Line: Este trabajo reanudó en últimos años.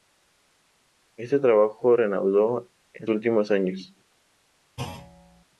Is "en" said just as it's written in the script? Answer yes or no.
yes